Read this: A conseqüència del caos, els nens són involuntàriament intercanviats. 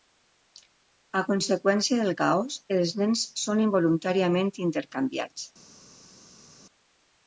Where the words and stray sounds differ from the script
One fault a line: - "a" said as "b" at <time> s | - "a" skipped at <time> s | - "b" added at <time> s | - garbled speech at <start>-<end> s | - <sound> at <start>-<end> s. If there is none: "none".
none